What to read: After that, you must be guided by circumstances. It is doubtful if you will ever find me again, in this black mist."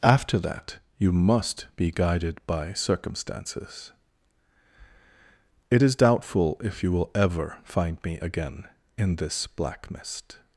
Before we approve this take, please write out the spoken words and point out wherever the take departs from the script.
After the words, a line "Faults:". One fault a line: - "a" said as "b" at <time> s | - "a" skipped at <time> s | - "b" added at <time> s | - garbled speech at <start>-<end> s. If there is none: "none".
After that, you must be guided by circumstances. It is doubtful if you will ever find me again, in this black mist."
Faults:
none